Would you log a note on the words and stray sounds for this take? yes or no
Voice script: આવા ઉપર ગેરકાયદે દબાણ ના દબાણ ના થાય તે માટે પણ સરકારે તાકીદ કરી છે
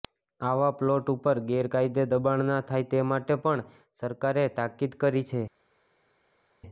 yes